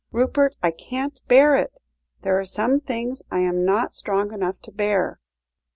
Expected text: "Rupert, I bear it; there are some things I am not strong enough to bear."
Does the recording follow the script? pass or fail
fail